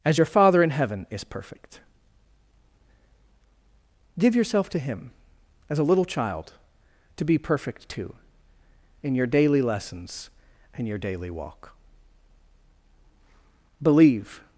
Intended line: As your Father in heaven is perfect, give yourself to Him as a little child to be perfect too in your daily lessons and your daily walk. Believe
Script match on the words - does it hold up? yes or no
yes